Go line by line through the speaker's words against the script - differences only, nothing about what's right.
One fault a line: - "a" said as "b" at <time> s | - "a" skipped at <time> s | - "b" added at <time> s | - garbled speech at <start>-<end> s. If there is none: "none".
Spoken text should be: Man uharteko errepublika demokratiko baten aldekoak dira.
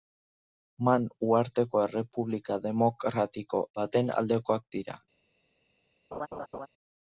none